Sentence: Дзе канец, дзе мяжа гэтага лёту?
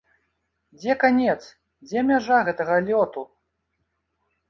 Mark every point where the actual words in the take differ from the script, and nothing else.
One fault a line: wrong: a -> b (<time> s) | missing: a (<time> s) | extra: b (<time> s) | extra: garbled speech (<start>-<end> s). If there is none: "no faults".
no faults